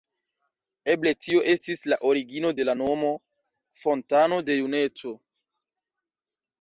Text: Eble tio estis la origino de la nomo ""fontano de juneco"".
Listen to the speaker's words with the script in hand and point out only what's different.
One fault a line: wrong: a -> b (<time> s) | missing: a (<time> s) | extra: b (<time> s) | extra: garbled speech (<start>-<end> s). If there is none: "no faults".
no faults